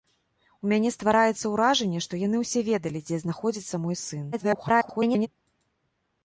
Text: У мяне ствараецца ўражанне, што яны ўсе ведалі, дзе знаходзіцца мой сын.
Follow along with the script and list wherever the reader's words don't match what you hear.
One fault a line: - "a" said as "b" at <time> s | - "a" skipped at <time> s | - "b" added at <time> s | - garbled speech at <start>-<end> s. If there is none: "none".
- garbled speech at 4.3-5.3 s